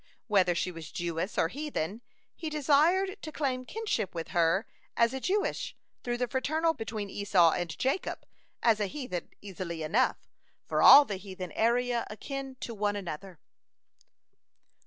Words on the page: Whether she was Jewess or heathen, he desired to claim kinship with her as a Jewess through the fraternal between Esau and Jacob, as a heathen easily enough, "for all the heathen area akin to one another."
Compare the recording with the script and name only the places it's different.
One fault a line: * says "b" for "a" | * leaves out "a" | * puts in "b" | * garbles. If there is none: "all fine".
all fine